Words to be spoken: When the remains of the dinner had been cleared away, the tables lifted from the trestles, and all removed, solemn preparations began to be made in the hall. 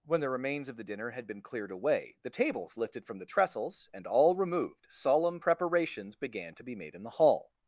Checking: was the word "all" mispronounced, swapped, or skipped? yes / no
no